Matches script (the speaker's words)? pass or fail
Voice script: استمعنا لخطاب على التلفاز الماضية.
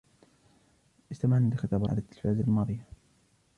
pass